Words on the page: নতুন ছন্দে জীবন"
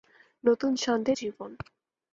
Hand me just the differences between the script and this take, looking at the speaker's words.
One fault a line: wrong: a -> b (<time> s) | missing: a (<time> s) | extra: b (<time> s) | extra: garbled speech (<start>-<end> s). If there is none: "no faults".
no faults